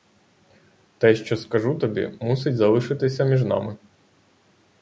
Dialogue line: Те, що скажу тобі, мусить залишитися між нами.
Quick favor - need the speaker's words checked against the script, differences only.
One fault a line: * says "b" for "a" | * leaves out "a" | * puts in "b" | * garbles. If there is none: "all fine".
all fine